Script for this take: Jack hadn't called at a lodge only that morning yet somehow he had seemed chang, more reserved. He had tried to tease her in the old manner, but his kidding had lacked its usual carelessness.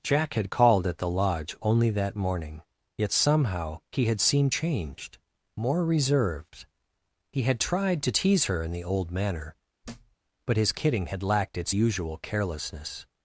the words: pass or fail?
fail